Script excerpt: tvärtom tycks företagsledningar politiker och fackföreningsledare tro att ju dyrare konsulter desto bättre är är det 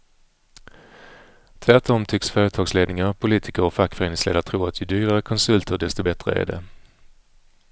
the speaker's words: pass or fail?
fail